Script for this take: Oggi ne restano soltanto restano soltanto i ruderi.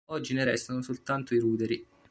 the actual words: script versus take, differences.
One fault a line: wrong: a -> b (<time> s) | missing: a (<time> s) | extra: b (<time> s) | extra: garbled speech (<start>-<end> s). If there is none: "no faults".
missing: restano soltanto (1.3 s)